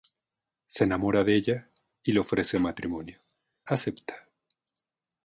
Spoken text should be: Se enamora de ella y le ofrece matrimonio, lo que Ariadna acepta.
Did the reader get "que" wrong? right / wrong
wrong